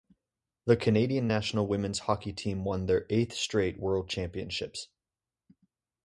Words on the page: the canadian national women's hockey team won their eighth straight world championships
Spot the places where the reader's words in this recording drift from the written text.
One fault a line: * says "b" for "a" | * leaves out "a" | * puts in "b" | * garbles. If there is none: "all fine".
all fine